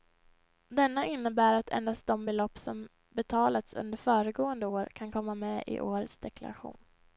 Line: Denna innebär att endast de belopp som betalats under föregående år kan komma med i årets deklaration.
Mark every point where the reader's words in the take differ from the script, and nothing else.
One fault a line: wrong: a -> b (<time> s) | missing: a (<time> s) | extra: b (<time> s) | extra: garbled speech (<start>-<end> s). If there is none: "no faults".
no faults